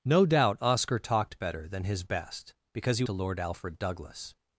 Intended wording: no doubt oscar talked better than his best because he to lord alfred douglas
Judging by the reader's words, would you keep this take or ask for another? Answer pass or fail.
pass